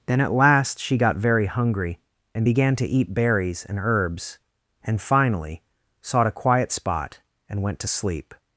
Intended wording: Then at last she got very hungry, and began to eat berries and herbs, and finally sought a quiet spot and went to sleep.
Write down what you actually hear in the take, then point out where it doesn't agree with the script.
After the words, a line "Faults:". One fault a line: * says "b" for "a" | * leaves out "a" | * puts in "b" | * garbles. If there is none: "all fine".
Then at last she got very hungry, and began to eat berries and herbs, and finally sought a quiet spot and went to sleep.
Faults:
all fine